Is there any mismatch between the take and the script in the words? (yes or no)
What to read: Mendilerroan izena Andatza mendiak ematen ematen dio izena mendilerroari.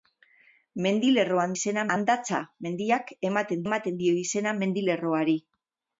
no